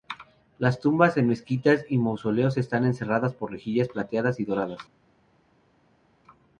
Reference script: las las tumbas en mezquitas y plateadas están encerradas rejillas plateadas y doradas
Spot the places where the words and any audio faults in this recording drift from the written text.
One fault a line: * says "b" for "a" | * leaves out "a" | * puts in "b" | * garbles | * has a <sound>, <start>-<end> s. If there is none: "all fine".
* leaves out "las"
* says "mausoleos" for "plateadas"
* puts in "por"